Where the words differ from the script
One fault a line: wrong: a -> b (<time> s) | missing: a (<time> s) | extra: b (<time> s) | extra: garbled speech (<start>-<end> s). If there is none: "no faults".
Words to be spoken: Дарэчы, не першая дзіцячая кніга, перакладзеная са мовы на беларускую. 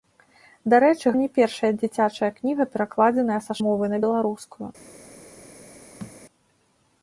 no faults